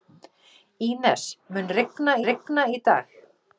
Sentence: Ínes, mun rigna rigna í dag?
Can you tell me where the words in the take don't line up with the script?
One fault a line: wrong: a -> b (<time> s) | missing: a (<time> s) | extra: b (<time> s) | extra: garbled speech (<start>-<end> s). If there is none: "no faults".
no faults